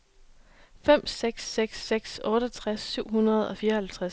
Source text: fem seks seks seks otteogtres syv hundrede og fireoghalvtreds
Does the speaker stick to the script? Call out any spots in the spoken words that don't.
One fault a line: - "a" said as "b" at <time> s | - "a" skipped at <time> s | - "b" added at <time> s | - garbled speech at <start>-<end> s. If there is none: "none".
none